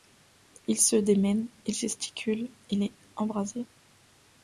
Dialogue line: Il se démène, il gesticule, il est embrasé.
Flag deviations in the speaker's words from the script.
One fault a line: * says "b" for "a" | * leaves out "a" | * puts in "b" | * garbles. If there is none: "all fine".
all fine